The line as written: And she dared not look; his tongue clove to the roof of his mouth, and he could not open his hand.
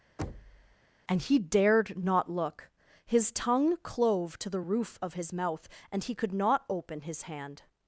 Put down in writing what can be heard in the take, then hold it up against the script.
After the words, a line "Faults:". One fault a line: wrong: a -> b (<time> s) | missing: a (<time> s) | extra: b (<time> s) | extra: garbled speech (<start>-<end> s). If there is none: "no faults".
And he dared not look; his tongue clove to the roof of his mouth, and he could not open his hand.
Faults:
wrong: she -> he (1.2 s)